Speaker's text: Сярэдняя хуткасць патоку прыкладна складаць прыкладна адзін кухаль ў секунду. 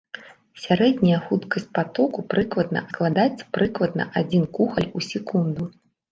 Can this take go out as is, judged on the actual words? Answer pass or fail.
pass